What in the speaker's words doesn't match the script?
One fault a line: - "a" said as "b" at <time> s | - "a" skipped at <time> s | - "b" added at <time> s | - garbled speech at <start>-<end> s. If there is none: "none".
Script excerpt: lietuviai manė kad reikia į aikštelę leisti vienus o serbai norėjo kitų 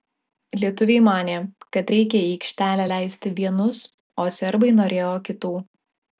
none